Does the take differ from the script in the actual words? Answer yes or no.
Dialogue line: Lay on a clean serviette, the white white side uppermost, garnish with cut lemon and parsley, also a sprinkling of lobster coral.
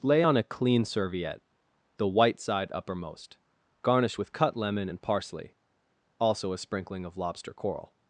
yes